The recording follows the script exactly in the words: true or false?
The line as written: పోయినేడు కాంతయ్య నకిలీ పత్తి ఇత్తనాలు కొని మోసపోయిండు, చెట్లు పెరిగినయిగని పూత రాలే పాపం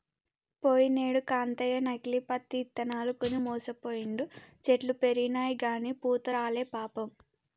true